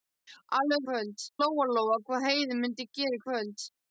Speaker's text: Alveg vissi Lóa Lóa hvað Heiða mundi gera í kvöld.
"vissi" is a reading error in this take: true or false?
true